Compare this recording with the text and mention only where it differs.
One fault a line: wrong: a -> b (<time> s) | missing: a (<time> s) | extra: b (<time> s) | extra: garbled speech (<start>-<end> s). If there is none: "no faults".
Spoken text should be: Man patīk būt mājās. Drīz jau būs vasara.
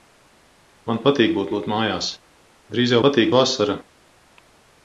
extra: būt (1.5 s)
wrong: būs -> patīk (3.0 s)